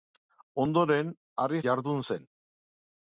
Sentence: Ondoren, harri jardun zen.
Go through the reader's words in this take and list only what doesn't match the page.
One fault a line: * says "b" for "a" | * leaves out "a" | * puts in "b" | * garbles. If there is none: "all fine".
all fine